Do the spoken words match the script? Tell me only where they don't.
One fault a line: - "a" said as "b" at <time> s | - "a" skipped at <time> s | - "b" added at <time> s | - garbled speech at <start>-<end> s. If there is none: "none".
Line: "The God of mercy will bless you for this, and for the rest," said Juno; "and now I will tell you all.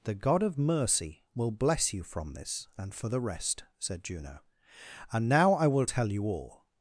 - "for" said as "from" at 2.0 s